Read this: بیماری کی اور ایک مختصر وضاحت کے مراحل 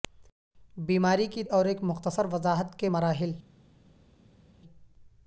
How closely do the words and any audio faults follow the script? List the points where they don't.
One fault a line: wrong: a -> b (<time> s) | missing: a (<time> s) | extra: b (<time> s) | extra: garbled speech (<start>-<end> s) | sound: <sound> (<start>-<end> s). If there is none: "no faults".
no faults